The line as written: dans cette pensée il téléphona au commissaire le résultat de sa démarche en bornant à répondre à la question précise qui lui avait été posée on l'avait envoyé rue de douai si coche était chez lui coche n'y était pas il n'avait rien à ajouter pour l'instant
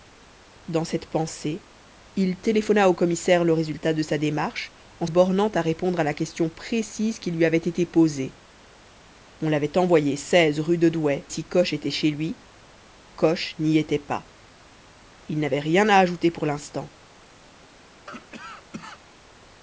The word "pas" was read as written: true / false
true